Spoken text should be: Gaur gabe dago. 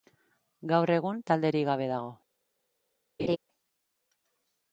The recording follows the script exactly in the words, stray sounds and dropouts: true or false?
false